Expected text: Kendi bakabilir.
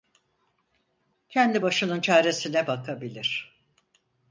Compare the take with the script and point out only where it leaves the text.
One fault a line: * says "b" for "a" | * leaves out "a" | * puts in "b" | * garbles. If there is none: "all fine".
* puts in "başının çaresine"